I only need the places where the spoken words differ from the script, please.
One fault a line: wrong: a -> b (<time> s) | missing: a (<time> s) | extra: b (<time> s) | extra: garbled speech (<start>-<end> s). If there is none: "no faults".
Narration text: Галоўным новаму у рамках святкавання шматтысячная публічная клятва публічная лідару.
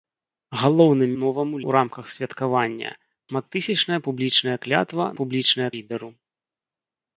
no faults